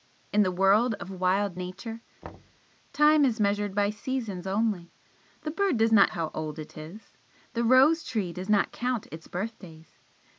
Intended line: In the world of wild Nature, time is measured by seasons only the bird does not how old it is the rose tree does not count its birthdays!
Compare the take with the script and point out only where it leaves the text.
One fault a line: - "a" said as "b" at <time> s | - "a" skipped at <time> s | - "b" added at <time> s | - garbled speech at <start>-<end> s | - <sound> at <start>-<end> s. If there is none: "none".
- thud at 2.2-2.6 s